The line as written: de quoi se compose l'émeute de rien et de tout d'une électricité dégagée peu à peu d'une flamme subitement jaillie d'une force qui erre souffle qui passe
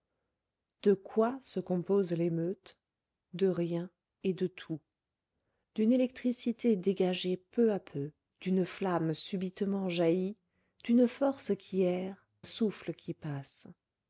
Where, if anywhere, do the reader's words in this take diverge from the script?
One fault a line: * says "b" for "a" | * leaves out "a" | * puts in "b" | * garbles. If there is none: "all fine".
all fine